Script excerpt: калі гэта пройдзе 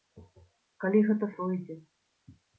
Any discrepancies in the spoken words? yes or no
no